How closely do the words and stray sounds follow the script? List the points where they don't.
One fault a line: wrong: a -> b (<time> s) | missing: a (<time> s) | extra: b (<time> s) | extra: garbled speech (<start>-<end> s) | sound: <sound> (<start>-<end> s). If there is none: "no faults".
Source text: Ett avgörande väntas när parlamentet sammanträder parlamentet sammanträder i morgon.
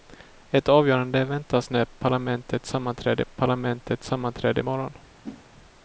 sound: whoosh (5.2-5.5 s)